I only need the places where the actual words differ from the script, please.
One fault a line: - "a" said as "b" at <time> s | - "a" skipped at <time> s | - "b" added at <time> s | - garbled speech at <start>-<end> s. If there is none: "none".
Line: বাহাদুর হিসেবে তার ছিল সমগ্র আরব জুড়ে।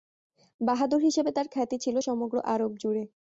- "খ্যাতি" added at 1.5 s